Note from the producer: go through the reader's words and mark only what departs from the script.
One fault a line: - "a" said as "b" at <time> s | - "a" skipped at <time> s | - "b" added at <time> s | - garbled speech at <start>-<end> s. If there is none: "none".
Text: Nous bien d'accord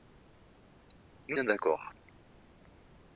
none